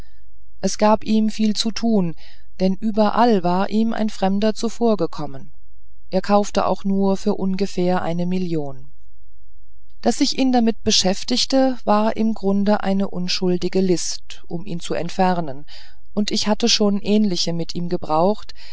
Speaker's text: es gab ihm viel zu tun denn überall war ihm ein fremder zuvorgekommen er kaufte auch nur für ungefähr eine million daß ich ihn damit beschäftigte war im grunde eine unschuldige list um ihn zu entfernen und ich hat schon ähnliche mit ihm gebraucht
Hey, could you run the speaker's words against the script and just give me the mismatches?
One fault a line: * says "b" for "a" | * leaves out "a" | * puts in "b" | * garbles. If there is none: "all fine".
* says "hatte" for "hat"